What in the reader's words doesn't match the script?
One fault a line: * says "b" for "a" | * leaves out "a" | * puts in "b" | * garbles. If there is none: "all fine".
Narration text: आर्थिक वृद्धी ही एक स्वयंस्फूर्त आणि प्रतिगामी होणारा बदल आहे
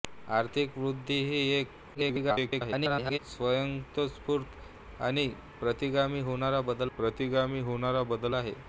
* garbles
* puts in "प्रतिगामी होणारा बदल"